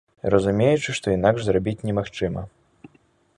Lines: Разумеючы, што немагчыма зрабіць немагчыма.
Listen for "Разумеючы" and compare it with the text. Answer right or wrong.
right